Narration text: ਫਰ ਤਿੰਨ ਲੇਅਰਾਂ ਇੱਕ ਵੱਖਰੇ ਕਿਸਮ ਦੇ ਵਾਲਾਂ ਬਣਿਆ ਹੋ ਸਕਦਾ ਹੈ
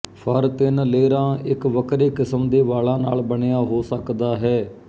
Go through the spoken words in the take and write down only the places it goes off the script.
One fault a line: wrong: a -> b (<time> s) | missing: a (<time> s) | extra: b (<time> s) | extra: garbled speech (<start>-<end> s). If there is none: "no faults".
extra: ਨਾਲ (3.0 s)